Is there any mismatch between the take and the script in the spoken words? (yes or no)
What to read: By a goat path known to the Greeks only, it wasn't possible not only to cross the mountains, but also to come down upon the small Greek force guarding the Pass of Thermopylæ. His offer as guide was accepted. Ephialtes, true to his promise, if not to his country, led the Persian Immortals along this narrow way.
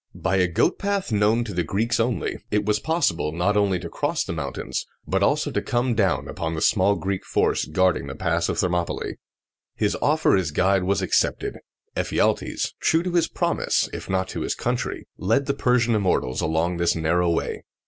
yes